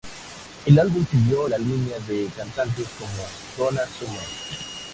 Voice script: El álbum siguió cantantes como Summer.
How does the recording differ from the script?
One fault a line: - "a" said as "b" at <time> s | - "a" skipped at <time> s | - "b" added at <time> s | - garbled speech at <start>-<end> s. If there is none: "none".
- "la línea de" added at 1.5 s
- "Donna" added at 3.6 s